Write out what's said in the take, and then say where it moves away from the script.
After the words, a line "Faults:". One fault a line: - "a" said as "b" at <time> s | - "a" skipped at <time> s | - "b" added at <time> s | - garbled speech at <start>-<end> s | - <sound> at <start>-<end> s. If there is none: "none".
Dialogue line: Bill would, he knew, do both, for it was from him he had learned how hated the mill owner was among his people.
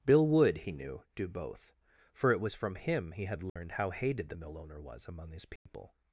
Bill would, he knew, do both, for it was from him he had learned how hated the mill owner was among his people.
Faults:
- dropout at 3.5-3.6 s
- dropout at 5.6-5.7 s